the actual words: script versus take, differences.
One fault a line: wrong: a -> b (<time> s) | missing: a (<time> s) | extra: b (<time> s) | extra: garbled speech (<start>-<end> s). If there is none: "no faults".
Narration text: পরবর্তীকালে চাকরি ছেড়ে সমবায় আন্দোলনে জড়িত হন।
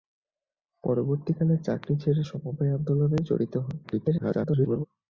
extra: garbled speech (3.8-4.9 s)